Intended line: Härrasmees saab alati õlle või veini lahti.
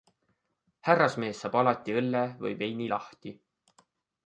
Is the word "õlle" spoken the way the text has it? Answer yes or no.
yes